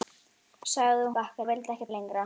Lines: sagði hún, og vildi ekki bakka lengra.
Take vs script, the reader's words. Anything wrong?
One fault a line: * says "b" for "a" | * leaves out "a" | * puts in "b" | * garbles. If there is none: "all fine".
* says "bakka" for "hún"
* leaves out "bakka"